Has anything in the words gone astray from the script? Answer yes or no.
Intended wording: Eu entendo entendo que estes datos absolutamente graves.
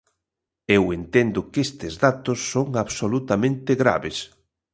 yes